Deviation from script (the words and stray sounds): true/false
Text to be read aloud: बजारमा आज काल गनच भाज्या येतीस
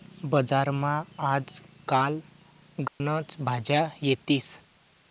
true